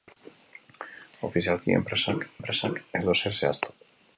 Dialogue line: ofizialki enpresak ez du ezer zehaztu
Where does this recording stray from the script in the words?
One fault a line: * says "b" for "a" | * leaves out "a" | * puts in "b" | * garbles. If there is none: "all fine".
* puts in "enpresak"